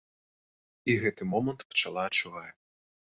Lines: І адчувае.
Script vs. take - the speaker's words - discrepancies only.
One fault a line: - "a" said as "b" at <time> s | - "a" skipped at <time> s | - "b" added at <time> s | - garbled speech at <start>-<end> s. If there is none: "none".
- "гэты момант пчала" added at 1.0 s